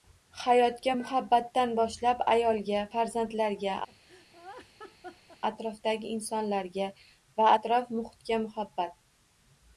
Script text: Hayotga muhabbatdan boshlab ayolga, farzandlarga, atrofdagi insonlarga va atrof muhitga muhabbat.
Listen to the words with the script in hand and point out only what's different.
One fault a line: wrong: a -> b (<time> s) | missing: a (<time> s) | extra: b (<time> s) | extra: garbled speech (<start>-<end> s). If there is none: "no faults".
no faults